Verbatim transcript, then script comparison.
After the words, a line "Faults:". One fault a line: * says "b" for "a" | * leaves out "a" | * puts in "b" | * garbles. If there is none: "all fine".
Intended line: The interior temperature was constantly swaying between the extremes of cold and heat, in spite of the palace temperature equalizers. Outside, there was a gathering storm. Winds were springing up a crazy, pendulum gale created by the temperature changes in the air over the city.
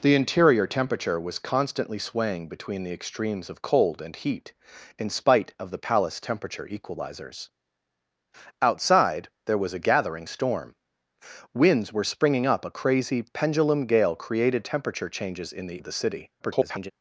The interior temperature was constantly swaying between the extremes of cold and heat, in spite of the palace temperature equalizers. Outside, there was a gathering storm. Winds were springing up a crazy, pendulum gale created temperature changes in the the city. [garbled]
Faults:
* leaves out "by the"
* leaves out "air over"
* garbles